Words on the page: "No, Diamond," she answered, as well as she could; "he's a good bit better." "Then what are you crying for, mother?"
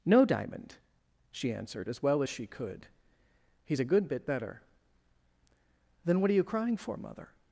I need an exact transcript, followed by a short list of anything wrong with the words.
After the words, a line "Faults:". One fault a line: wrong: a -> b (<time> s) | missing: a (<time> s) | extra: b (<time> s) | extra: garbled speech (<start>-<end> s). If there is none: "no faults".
"No, Diamond," she answered, as well as she could; "he's a good bit better." "Then what are you crying for, mother?"
Faults:
no faults